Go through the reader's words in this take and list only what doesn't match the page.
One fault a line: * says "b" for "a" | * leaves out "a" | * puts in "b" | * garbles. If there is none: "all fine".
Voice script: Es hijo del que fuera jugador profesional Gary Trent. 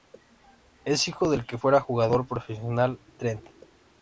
* leaves out "Gary"